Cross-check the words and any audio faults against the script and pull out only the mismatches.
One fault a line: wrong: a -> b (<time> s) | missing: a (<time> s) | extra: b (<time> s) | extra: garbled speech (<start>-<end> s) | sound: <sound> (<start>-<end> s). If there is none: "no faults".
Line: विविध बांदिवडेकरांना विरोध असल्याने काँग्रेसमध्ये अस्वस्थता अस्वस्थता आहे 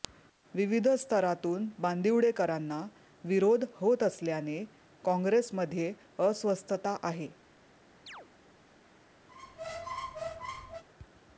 extra: स्तरातून (0.9 s)
extra: होत (3.8 s)
missing: अस्वस्थता (7.0 s)
sound: chirp (8.1-8.3 s)
sound: squeak (9.3-10.8 s)